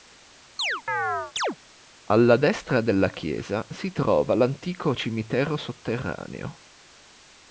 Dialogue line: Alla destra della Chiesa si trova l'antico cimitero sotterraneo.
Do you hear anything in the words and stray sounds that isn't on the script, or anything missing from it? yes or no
yes